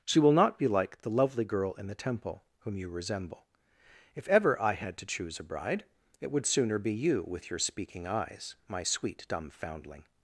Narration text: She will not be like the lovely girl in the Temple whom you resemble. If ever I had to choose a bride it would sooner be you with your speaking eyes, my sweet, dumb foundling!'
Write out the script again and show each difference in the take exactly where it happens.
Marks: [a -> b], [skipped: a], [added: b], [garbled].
She will not be like the lovely girl in the Temple whom you resemble. If ever I had to choose a bride it would sooner be you with your speaking eyes, my sweet, dumb foundling!'